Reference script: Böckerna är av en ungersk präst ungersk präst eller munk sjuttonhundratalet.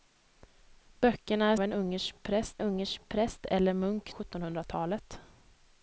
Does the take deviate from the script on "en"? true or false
false